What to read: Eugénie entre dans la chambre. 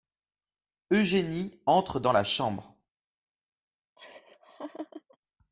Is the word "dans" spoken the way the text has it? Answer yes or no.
yes